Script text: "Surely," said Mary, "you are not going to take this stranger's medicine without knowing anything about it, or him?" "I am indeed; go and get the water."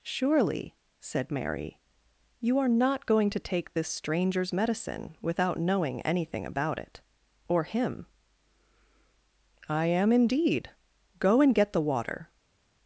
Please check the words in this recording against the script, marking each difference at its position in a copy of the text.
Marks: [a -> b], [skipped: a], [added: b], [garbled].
"Surely," said Mary, "you are not going to take this stranger's medicine without knowing anything about it, or him?" "I am indeed; go and get the water."